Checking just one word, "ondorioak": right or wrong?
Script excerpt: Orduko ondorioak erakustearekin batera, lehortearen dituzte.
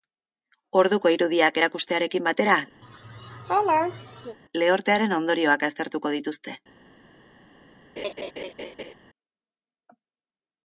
wrong